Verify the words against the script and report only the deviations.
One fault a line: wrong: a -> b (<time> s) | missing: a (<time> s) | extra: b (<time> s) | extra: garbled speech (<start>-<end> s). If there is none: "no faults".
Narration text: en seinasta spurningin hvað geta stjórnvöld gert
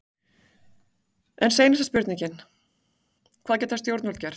no faults